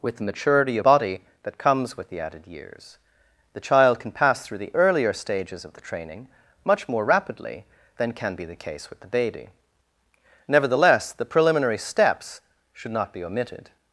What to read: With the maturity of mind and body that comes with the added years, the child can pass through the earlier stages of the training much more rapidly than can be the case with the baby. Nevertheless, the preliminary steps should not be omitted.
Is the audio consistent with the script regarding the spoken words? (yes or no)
no